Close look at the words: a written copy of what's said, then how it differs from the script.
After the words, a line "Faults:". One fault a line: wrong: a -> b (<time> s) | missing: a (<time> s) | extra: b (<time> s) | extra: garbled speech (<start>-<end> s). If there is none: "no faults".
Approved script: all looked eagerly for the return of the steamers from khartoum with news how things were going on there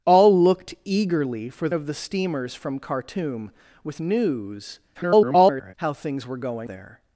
all looked eagerly for of the steamers from khartoum with news [garbled] how things were going there
Faults:
missing: the return (1.7 s)
extra: garbled speech (4.9-5.7 s)
missing: on (6.7 s)